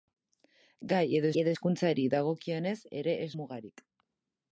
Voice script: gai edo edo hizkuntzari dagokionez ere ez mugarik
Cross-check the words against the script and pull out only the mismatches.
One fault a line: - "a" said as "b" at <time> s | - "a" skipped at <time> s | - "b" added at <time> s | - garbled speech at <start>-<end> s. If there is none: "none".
none